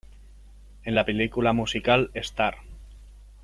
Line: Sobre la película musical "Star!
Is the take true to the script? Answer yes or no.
no